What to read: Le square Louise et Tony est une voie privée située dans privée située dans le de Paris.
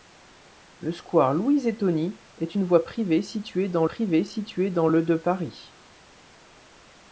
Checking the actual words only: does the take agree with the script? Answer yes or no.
yes